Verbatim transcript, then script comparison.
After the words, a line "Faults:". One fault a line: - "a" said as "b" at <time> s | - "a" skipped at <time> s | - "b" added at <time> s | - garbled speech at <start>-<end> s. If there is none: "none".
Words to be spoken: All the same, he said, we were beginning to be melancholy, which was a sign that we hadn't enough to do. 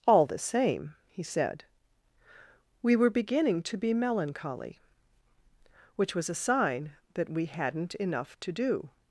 All the same, he said, we were beginning to be melancholy, which was a sign that we hadn't enough to do.
Faults:
none